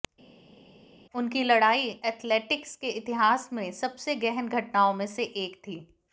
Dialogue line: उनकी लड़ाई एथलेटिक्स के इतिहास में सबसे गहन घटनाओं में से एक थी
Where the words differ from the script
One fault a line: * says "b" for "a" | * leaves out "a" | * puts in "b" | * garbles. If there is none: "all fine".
all fine